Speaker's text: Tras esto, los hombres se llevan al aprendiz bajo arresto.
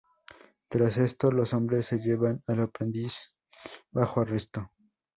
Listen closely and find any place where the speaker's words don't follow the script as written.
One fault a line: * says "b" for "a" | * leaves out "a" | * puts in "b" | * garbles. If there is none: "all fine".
all fine